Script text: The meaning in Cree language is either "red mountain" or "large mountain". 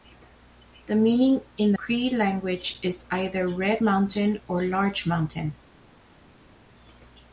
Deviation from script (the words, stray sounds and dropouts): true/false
false